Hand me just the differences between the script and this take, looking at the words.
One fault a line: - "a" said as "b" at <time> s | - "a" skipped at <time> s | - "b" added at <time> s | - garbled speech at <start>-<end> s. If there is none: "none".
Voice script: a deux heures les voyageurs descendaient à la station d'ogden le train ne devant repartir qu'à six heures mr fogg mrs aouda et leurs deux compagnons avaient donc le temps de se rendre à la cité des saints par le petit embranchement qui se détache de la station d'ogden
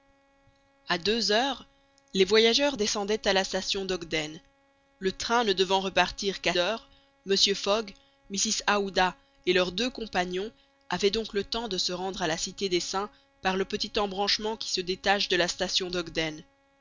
- "six" skipped at 6.5 s